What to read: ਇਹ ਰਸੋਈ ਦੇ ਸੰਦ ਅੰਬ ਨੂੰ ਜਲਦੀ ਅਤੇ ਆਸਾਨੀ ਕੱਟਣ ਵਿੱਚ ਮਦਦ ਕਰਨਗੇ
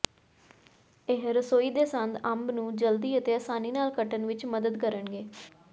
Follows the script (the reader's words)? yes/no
no